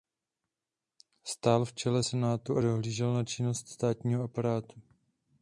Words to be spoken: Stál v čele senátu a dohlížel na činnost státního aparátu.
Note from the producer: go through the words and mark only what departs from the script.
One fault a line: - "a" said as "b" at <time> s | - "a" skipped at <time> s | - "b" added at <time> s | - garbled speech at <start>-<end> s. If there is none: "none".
none